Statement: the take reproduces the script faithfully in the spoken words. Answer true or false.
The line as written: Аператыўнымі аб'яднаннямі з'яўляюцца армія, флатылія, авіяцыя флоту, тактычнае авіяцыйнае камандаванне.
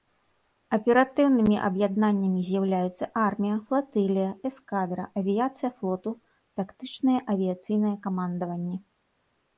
false